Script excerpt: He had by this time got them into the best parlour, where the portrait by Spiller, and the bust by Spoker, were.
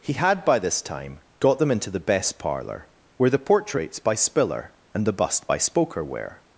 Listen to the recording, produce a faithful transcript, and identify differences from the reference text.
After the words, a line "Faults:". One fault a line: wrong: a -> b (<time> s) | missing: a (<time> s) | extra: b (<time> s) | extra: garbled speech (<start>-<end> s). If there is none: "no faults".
He had by this time got them into the best parlour, where the portraits by Spiller, and the bust by Spoker, were.
Faults:
wrong: portrait -> portraits (3.4 s)